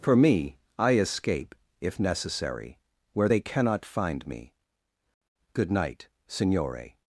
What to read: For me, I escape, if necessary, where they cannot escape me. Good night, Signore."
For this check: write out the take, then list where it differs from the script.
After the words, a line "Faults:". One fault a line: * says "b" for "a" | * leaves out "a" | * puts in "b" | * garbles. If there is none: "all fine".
For me, I escape, if necessary, where they cannot find me. Good night, Signore."
Faults:
* says "find" for "escape"